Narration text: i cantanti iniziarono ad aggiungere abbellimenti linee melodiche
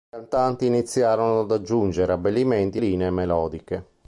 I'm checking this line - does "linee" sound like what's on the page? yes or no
yes